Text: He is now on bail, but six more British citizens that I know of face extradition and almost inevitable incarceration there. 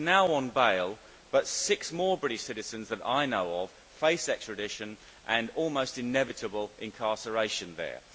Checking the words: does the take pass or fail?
pass